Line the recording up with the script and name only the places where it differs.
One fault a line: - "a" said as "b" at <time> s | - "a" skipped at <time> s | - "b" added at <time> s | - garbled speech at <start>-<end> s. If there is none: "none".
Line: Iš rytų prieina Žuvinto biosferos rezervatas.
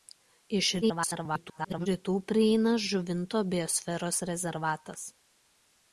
- garbled speech at 0.8-1.9 s